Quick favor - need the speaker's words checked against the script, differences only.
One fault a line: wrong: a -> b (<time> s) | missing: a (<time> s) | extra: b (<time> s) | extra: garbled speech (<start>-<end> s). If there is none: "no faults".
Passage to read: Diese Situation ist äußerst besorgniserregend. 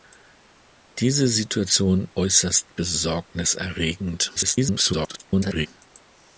missing: ist (2.1 s)
extra: garbled speech (4.3-5.7 s)